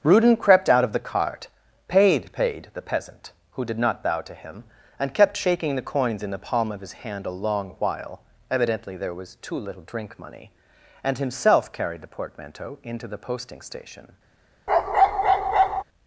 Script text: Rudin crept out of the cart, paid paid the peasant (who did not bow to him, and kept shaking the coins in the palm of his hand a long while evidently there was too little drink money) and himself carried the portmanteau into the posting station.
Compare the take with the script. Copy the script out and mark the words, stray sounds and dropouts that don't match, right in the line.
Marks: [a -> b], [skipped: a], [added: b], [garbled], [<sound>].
Rudin crept out of the cart, paid paid the peasant (who did not bow to him, and kept shaking the coins in the palm of his hand a long while evidently there was too little drink money) and himself carried the portmanteau into the posting station. [bark]